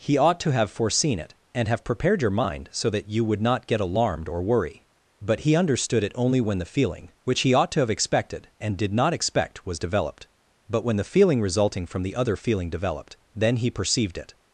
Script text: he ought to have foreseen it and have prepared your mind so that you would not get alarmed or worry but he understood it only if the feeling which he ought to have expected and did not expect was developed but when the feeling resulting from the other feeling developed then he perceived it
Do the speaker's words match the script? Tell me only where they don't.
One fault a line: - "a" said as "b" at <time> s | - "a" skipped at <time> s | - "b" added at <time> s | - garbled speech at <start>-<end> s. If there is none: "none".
- "if" said as "when" at 6.4 s